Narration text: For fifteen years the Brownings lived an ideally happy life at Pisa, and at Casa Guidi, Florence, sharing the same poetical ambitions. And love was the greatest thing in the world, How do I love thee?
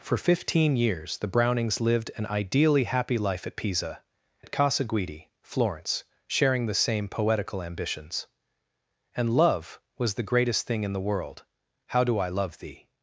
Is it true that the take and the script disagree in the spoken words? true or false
true